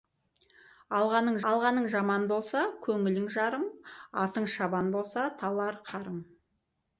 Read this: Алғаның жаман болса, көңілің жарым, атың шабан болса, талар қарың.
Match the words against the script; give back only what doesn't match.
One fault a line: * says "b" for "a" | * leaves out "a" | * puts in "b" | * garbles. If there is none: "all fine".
* puts in "алғаның"